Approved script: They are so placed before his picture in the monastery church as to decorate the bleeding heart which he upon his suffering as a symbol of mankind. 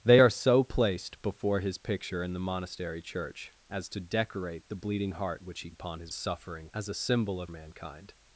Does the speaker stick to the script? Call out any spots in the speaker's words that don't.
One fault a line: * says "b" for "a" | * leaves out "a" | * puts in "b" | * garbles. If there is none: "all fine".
all fine